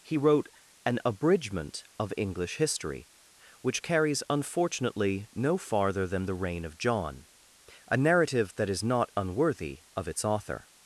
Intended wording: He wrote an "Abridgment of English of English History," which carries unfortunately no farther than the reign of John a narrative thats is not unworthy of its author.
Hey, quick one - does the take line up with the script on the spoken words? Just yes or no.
no